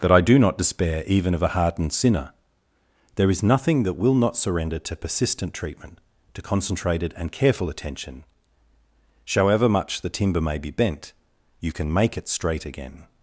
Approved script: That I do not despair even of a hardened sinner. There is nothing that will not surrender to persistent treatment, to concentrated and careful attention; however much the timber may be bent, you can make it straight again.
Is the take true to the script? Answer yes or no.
yes